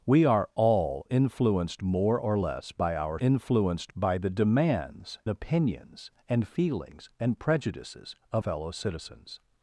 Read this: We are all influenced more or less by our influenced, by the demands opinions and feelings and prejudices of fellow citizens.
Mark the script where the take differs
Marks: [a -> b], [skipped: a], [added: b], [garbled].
We are all influenced more or less by our influenced, by the demands opinions and feelings and prejudices of fellow citizens.